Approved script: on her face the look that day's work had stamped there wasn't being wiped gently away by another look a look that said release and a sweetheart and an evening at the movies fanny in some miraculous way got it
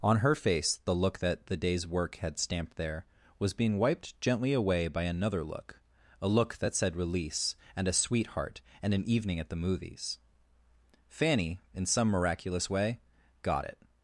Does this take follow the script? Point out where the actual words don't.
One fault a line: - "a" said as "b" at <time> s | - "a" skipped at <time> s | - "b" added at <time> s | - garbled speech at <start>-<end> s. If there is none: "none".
- "the" added at 1.4 s
- "wasn't" said as "was" at 3.4 s